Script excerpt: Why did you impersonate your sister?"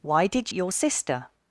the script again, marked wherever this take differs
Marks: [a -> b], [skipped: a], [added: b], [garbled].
Why did [skipped: you impersonate] your sister?"